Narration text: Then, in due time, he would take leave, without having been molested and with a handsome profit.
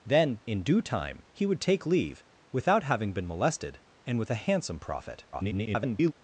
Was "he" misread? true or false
false